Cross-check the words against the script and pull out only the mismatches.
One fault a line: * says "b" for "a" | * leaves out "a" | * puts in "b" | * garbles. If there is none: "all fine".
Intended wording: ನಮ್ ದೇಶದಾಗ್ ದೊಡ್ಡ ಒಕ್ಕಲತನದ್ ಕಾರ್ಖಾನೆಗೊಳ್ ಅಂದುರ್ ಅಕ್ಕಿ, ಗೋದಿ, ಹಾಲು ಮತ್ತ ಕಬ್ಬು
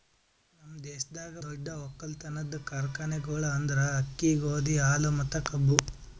all fine